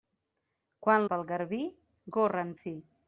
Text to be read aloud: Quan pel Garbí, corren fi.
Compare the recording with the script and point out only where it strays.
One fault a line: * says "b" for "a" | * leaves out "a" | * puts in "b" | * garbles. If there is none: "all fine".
all fine